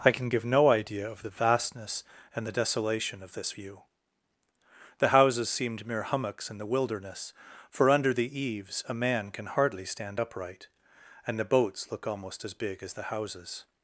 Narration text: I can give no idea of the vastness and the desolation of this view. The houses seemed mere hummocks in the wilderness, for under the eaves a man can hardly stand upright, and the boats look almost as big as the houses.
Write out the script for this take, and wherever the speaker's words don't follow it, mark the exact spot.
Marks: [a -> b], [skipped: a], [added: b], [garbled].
I can give no idea of the vastness and the desolation of this view. The houses seemed mere hummocks in the wilderness, for under the eaves a man can hardly stand upright, and the boats look almost as big as the houses.